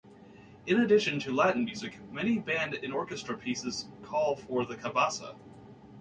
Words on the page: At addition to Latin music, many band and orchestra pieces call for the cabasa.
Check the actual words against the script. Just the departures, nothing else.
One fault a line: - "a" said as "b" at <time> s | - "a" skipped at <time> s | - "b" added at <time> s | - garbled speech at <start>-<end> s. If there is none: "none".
- "At" said as "In" at 0.7 s